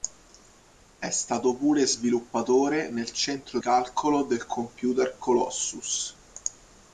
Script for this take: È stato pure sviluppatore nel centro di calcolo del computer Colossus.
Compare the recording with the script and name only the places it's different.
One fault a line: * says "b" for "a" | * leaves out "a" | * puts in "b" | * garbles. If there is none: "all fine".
* leaves out "di"